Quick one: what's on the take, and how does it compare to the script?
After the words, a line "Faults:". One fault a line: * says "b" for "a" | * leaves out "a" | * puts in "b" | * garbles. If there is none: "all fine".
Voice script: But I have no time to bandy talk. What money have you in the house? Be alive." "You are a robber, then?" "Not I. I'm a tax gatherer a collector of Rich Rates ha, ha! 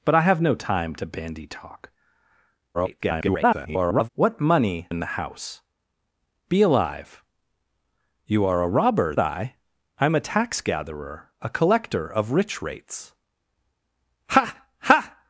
But I have no time to bandy talk. [garbled] What money in the house? Be alive." "You are a robber, I. I'm a tax gatherer a collector of Rich Rates ha, ha!
Faults:
* garbles
* leaves out "have you"
* leaves out "then Not"